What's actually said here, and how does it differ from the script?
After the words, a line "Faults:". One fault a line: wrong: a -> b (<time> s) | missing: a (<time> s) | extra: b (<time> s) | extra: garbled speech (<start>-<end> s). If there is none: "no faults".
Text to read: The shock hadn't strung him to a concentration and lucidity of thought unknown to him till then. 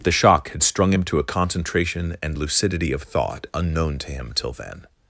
The shock had strung him to a concentration and lucidity of thought unknown to him till then.
Faults:
wrong: hadn't -> had (0.5 s)